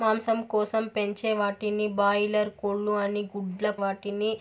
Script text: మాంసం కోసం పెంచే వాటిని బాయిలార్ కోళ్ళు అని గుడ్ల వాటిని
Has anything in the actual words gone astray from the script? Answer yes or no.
no